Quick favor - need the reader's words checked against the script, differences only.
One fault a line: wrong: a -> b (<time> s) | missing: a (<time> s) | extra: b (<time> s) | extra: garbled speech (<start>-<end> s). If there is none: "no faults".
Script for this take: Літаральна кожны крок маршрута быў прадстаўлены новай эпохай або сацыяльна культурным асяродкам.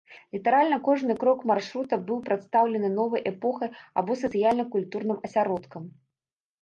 no faults